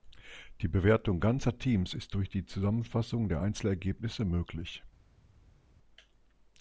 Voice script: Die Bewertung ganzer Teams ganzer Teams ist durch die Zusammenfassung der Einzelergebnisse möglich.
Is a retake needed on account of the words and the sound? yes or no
yes